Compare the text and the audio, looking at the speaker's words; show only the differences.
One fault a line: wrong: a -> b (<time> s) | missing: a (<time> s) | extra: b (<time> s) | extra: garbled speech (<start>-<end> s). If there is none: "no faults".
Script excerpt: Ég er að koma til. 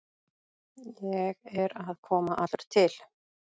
extra: allur (2.4 s)